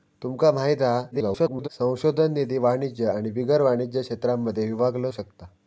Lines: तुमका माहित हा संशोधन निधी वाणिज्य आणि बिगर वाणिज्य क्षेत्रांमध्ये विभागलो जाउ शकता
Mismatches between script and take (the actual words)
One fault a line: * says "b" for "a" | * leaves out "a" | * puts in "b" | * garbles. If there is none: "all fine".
* garbles
* leaves out "जाउ"